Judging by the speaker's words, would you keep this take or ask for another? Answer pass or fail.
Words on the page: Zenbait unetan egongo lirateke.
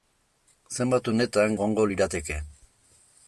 pass